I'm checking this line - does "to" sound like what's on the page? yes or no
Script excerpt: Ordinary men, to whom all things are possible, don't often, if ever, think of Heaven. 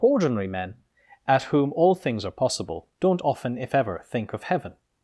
no